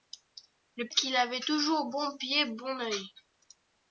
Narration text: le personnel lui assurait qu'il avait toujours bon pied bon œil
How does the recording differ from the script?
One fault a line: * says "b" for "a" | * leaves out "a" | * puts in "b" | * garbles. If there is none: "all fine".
* leaves out "personnel lui assurait"